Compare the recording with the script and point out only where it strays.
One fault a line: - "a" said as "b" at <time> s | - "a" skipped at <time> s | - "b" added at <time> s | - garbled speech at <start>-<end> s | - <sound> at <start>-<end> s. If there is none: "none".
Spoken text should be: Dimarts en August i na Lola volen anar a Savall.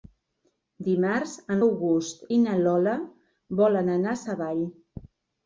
none